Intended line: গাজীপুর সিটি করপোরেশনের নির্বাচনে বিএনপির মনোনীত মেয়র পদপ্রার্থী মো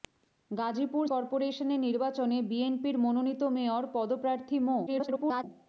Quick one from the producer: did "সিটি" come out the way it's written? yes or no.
no